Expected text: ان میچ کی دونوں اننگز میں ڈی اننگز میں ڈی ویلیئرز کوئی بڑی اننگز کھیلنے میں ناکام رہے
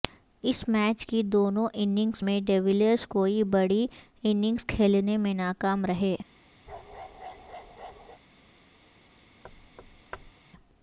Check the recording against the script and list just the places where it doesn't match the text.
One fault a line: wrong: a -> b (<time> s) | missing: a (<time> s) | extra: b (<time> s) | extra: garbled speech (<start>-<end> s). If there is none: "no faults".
wrong: ان -> اس (0.4 s)
missing: اننگز میں ڈی (2.6 s)